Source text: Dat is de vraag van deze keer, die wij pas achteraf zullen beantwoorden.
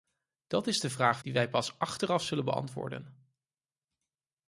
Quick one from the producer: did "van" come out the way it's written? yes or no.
no